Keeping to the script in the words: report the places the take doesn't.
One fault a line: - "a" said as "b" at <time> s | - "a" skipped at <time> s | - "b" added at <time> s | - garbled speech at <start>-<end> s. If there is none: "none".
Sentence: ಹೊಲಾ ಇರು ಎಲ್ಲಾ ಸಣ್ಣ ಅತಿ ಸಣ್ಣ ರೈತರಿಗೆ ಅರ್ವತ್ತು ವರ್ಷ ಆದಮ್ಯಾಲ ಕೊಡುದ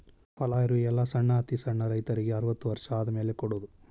none